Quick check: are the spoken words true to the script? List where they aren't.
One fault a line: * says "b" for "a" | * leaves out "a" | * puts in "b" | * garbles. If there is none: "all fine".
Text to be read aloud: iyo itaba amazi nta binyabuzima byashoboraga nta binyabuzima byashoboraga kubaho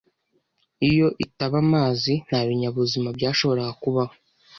* leaves out "nta binyabuzima byashoboraga"